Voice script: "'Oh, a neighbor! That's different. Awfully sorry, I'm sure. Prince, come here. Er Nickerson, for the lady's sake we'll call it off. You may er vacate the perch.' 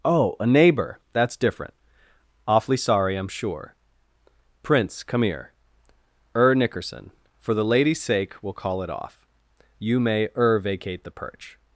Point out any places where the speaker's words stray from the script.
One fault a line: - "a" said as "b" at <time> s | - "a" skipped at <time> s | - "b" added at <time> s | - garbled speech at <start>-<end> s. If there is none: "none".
none